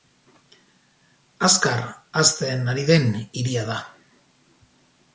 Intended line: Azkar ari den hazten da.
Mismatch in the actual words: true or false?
true